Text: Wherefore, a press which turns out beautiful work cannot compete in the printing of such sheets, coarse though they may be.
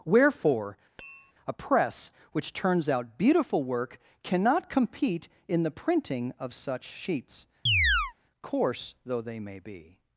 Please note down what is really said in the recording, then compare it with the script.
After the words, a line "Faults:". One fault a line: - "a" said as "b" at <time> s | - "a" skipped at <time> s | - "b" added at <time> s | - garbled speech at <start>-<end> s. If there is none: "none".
Wherefore, a press which turns out beautiful work cannot compete in the printing of such sheets, coarse though they may be.
Faults:
none